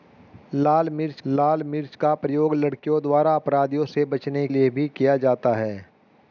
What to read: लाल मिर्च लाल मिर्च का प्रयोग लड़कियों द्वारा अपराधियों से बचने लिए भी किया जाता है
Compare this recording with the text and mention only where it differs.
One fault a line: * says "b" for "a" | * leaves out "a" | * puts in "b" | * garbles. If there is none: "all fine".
all fine